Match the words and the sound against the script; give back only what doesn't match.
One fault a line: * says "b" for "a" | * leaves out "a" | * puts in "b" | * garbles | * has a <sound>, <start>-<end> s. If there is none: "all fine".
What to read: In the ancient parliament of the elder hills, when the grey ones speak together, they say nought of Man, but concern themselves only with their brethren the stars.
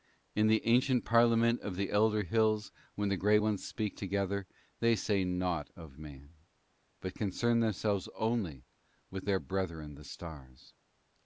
all fine